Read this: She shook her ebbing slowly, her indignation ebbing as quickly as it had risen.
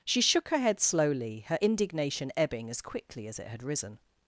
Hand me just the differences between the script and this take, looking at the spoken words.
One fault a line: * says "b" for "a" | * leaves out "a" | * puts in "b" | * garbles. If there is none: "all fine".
* says "head" for "ebbing"